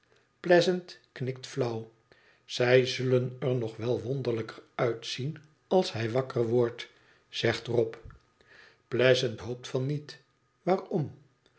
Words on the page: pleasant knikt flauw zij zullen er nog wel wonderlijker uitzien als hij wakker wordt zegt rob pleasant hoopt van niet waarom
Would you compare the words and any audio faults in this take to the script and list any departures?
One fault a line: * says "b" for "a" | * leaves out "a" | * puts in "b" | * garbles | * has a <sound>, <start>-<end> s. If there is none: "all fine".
all fine